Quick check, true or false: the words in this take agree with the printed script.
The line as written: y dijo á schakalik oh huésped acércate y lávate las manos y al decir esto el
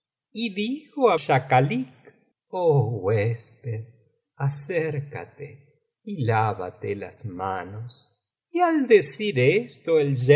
true